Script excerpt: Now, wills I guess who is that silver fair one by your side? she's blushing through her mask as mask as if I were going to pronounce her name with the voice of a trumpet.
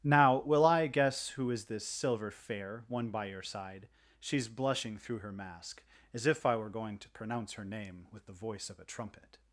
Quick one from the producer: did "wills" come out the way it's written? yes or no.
no